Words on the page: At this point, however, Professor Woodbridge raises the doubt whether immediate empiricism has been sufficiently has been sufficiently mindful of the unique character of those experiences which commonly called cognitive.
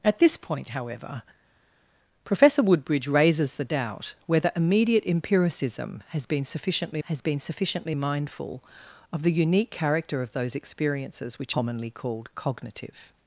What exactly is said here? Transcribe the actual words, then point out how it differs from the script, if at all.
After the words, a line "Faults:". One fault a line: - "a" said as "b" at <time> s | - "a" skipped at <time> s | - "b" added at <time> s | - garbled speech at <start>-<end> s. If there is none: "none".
At this point, however, Professor Woodbridge raises the doubt whether immediate empiricism has been sufficiently has been sufficiently mindful of the unique character of those experiences which commonly called cognitive.
Faults:
none